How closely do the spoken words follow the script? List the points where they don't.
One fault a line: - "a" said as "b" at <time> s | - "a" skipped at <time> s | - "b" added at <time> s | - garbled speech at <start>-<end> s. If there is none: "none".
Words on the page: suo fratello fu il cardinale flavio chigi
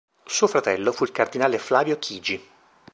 none